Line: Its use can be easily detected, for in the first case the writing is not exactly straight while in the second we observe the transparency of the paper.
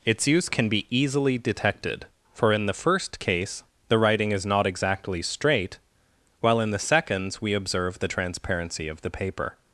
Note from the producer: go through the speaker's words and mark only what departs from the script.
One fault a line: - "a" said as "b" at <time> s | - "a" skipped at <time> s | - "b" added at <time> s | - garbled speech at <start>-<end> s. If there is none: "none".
- "second" said as "seconds" at 6.8 s